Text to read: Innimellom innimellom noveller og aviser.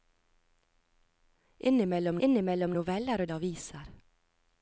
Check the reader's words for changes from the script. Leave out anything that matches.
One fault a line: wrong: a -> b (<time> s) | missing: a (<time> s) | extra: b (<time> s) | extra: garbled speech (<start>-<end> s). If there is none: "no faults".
no faults